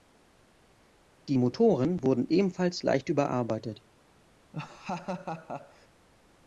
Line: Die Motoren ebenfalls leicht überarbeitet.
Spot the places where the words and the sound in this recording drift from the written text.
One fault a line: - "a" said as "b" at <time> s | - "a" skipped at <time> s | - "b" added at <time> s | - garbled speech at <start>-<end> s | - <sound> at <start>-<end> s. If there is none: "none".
- "wurden" added at 2.0 s
- laugh at 4.5-5.9 s